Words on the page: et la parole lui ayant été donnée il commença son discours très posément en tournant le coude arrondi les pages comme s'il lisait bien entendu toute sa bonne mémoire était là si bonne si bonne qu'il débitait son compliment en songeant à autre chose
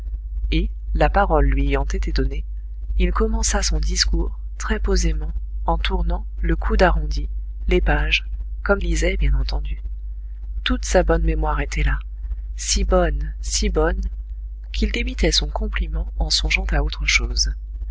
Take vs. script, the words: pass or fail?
fail